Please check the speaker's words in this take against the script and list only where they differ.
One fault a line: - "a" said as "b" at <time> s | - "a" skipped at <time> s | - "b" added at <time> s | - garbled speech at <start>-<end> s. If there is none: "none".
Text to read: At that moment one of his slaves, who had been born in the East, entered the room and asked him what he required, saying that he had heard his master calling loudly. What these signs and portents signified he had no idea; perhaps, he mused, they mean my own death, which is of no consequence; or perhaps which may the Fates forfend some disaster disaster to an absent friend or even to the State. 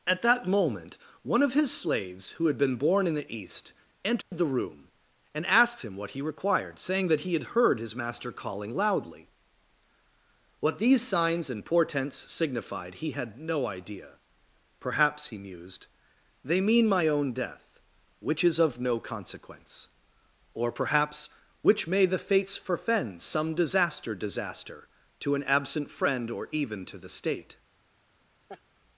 none